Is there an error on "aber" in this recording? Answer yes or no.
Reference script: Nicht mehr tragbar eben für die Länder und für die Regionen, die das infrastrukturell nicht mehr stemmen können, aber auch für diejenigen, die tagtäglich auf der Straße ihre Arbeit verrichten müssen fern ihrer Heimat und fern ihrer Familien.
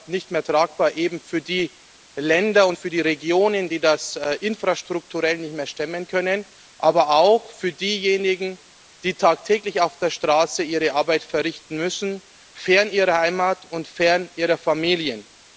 no